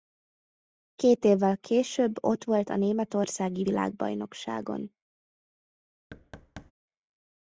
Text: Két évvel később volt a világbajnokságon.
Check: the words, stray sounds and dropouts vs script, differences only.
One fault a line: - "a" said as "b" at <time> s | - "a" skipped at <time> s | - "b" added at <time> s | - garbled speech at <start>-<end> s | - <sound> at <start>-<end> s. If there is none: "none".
- "ott" added at 2.2 s
- "németországi" added at 2.8 s
- thud at 6.1-6.7 s